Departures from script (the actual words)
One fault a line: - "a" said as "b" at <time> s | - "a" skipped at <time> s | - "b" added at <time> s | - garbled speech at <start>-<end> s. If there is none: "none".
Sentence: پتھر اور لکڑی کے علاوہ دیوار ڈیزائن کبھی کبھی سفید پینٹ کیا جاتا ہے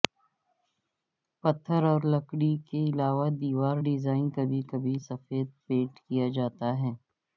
none